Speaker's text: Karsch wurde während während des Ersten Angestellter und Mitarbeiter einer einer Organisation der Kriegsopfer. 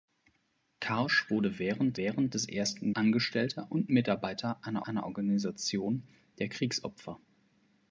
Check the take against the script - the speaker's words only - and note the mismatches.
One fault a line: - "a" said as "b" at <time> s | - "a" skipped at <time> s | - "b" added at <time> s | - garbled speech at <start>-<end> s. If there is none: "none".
none